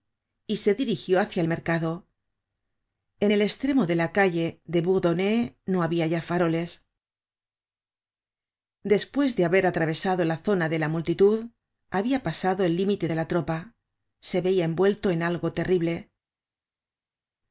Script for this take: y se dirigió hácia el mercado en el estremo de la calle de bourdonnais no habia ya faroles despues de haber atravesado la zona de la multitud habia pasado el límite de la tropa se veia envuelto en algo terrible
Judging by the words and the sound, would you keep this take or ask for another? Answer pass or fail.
pass